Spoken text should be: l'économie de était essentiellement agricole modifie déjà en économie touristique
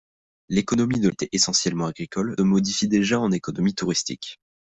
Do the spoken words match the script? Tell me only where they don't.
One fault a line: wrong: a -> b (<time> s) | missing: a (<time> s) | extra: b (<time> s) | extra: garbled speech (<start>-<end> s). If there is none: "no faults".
no faults